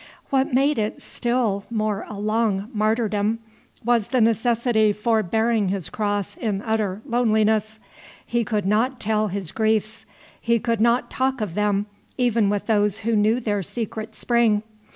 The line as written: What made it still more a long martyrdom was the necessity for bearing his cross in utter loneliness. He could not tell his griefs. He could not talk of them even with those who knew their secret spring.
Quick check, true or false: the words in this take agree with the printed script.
true